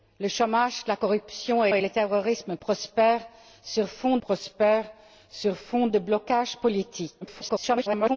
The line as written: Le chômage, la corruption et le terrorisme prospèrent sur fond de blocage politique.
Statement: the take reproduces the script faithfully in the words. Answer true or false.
false